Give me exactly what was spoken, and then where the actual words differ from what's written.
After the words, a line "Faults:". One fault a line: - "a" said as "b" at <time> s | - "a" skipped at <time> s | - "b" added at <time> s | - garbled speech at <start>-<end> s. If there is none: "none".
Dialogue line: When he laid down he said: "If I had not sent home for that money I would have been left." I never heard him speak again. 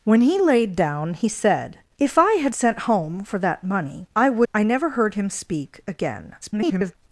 When he laid down he said: "If I had sent home for that money I would." I never heard him speak again. [garbled]
Faults:
- "not" skipped at 2.5 s
- "have been left" skipped at 4.5 s
- garbled speech at 6.4-7.0 s